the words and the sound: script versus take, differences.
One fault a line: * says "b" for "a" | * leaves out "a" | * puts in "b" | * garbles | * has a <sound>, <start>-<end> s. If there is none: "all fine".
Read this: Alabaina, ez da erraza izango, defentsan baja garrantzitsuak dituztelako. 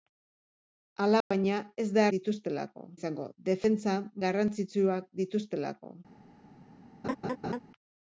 * has a dropout, 1.2-1.3 s
* says "dituztelako" for "erraza"
* leaves out "baja"
* has a laugh, 7.0-7.6 s